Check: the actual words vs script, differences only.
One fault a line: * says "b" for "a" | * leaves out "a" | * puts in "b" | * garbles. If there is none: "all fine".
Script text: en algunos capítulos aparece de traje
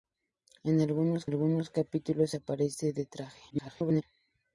* puts in "algunos"
* garbles